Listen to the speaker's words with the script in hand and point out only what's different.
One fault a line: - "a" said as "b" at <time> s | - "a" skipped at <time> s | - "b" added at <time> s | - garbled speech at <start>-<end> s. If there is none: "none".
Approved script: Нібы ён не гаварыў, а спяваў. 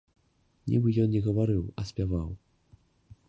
none